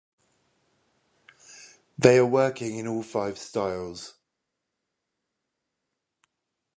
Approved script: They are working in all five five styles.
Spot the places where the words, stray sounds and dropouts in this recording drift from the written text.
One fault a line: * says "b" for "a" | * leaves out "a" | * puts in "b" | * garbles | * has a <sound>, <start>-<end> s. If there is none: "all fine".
* leaves out "five"